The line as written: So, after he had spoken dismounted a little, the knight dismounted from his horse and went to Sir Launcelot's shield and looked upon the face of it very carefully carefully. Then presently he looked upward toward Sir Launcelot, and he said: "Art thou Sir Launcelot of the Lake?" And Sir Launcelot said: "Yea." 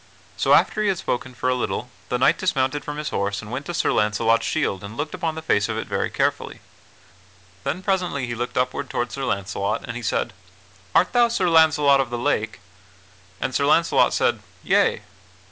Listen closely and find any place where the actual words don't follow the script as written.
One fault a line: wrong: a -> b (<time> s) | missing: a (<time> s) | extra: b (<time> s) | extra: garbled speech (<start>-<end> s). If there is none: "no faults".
wrong: dismounted -> for (1.3 s)
missing: carefully (6.6 s)